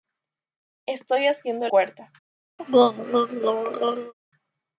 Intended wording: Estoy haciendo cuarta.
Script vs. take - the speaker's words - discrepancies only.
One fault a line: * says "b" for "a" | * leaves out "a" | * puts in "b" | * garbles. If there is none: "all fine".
all fine